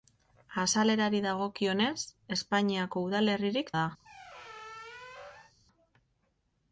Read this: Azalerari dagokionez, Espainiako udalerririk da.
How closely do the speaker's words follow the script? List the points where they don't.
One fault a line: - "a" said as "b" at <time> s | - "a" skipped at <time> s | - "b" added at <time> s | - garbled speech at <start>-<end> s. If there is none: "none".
none